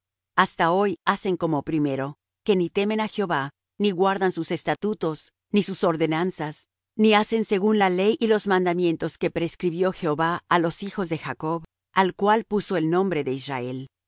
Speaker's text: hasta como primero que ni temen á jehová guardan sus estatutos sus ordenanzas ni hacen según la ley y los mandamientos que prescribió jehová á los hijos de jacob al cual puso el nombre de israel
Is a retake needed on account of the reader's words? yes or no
yes